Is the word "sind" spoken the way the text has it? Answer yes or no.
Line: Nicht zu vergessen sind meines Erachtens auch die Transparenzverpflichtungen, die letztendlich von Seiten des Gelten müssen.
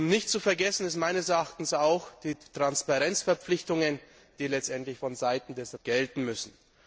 yes